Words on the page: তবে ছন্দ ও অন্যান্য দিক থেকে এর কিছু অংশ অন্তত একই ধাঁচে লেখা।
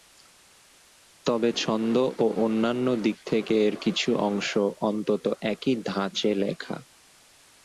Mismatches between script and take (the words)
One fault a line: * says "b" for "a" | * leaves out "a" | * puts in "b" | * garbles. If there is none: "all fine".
all fine